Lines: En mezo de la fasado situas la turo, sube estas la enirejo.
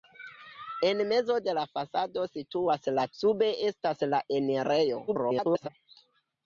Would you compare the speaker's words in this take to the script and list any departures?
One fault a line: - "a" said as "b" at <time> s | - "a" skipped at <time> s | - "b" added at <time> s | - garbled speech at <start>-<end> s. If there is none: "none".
- "turo" skipped at 3.0 s
- garbled speech at 5.1-5.7 s